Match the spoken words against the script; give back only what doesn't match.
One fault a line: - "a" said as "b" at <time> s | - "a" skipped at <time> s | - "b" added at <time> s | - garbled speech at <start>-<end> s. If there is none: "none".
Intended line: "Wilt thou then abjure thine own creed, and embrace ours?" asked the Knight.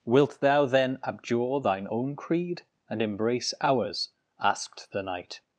none